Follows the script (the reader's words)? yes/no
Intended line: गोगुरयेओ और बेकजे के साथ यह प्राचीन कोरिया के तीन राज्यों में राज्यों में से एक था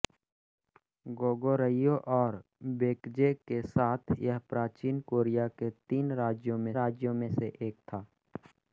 yes